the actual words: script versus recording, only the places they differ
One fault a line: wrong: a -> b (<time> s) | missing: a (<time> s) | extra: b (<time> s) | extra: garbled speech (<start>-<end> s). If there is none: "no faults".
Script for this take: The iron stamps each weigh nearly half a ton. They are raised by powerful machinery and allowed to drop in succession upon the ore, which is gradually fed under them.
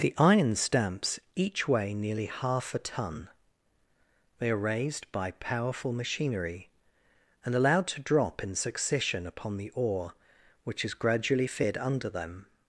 no faults